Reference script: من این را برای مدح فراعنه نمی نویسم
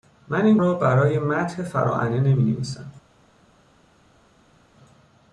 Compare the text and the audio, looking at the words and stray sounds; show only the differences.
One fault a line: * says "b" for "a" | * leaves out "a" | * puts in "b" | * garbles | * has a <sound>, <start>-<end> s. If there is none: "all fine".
all fine